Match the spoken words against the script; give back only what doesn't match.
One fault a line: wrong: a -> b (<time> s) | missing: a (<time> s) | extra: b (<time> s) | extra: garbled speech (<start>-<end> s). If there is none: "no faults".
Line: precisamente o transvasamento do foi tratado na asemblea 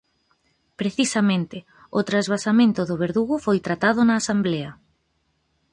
extra: verdugo (3.0 s)